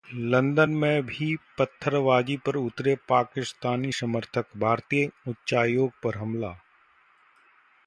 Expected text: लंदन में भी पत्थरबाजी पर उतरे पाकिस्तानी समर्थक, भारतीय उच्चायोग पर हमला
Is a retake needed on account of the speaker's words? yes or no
no